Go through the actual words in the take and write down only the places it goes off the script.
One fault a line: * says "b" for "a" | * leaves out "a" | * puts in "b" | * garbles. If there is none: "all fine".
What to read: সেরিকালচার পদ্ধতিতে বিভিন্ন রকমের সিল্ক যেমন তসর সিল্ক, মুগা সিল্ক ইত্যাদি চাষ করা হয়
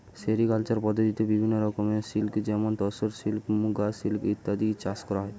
all fine